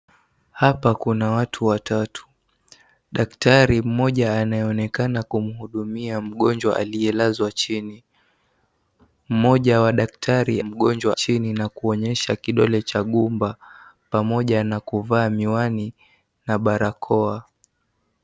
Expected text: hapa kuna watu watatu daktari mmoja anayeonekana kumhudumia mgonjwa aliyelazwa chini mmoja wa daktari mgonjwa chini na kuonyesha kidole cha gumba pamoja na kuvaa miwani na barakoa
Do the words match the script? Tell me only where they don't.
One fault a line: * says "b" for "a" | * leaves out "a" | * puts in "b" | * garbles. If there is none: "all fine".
all fine